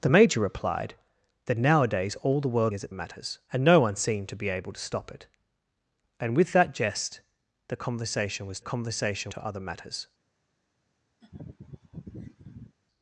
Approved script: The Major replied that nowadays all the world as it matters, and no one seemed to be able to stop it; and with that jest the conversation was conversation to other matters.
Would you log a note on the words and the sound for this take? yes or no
yes